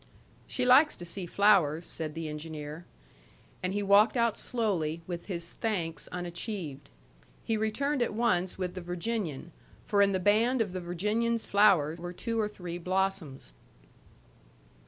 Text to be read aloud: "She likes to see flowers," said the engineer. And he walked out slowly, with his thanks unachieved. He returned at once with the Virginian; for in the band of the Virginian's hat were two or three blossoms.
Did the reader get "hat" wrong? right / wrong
wrong